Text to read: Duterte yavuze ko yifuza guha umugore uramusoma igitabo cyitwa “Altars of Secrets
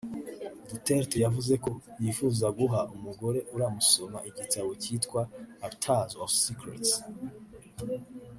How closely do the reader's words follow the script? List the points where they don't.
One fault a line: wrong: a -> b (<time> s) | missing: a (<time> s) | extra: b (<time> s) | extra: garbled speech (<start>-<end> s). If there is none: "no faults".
no faults